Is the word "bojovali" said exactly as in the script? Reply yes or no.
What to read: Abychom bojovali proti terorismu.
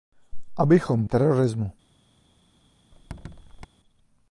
no